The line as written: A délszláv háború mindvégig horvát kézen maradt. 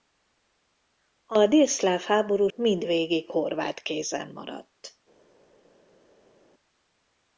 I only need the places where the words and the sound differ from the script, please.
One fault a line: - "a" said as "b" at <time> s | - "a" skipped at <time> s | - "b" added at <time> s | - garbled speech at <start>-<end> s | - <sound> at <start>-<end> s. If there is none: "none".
none